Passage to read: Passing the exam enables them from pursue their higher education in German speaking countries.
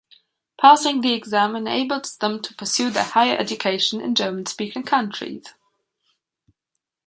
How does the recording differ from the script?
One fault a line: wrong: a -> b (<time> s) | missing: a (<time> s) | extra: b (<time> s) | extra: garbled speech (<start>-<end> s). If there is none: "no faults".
wrong: from -> to (2.4 s)